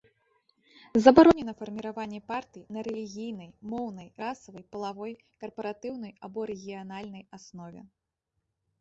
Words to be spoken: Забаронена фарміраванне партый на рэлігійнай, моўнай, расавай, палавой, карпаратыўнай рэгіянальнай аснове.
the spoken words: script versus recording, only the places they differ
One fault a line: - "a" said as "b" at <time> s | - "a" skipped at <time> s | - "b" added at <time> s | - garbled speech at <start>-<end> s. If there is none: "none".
- "або" added at 6.3 s